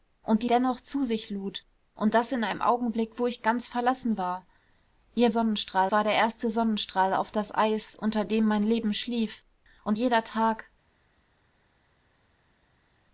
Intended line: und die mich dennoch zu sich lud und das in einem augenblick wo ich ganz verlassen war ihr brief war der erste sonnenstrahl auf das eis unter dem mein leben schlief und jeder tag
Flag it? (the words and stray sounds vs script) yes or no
yes